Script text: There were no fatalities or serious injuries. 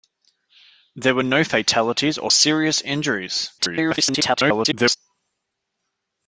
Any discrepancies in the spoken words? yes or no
yes